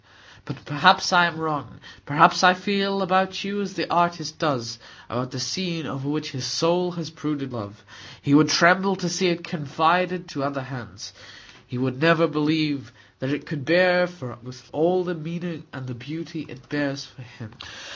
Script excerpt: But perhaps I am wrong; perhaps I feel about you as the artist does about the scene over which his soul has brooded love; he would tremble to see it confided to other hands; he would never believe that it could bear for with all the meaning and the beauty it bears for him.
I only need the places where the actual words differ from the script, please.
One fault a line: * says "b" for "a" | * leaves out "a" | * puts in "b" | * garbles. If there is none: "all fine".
all fine